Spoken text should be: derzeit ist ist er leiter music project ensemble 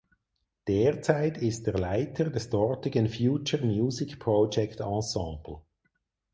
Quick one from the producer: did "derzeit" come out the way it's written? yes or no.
yes